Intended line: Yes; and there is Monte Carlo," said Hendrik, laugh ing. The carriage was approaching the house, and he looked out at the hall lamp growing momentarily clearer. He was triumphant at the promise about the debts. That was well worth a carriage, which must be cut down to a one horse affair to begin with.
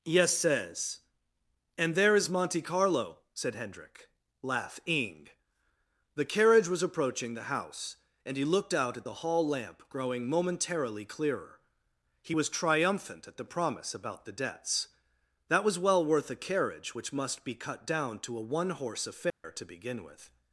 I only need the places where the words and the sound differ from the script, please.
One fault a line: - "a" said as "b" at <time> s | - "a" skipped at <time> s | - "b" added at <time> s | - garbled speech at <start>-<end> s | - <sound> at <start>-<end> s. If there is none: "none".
- "says" added at 0.3 s
- dropout at 19.3-19.4 s